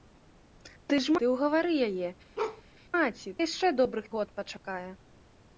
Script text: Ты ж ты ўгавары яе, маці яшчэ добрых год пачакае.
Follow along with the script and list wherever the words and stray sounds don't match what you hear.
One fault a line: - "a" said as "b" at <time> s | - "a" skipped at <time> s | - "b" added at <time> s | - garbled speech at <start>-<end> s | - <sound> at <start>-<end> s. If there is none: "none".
- bark at 2.4-2.6 s